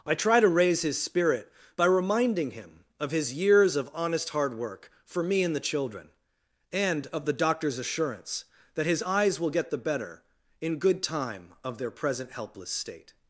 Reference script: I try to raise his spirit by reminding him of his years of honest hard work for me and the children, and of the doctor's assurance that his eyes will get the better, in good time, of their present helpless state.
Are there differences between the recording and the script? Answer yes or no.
no